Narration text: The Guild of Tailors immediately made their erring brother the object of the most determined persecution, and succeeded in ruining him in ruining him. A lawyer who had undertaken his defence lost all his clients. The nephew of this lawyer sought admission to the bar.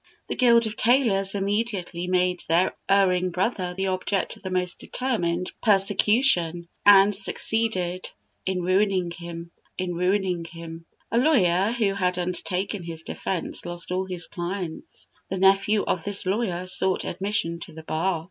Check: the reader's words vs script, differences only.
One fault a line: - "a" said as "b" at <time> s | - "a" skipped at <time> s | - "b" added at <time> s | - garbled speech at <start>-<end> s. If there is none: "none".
none